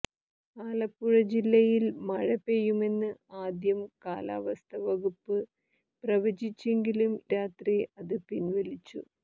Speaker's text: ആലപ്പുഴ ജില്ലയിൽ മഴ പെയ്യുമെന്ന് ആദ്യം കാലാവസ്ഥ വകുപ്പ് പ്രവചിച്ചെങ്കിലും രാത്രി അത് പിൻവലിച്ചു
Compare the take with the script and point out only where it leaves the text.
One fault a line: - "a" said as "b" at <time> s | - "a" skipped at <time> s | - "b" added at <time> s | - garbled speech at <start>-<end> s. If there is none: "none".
none